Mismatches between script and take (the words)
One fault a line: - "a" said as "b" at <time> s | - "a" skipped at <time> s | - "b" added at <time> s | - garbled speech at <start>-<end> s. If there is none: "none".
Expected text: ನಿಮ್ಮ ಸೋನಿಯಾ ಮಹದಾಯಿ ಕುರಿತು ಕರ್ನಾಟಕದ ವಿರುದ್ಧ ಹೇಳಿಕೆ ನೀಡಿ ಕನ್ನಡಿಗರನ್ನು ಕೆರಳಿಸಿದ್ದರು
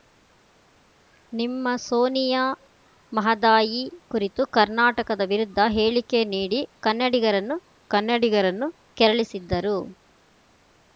- "ಕನ್ನಡಿಗರನ್ನು" added at 7.9 s